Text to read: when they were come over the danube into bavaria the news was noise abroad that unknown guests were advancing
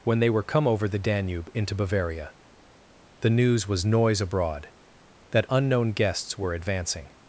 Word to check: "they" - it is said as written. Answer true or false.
true